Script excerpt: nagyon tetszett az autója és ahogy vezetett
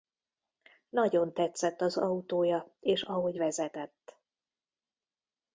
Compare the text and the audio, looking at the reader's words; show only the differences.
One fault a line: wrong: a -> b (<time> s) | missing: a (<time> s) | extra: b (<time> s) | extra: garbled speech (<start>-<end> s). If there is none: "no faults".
no faults